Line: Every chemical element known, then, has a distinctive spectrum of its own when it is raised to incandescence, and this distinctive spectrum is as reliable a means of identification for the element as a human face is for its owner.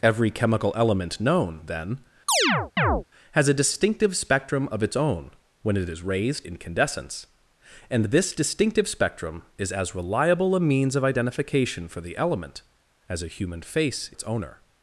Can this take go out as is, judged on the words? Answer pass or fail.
fail